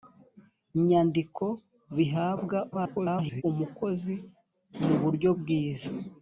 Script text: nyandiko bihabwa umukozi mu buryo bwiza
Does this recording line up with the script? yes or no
no